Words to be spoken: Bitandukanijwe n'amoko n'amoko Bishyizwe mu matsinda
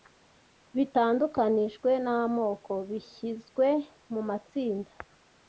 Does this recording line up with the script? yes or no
no